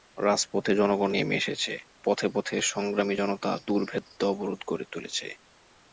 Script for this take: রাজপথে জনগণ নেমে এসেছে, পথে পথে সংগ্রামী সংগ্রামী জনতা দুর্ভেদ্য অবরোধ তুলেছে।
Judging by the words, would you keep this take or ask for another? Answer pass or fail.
fail